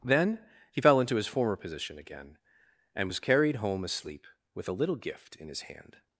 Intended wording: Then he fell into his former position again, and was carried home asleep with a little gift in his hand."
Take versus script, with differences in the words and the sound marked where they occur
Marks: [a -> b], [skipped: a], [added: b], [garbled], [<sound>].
Then he fell into his former position again, and was carried home asleep with a little gift in his hand."